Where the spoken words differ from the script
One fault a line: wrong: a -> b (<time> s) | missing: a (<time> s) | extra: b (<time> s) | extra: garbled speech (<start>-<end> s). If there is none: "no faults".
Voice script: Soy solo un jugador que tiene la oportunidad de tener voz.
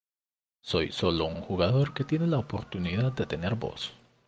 extra: un (1.3 s)